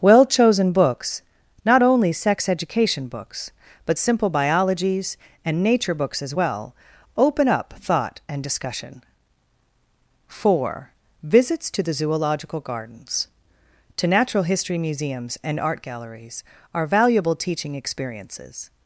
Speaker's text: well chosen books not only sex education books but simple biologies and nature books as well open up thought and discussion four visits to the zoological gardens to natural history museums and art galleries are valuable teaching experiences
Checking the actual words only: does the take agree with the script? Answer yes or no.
yes